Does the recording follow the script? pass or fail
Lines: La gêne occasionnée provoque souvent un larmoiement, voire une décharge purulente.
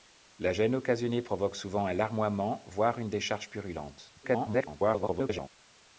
fail